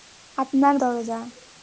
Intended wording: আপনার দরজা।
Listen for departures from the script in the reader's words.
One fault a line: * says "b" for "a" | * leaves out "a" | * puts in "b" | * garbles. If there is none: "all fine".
all fine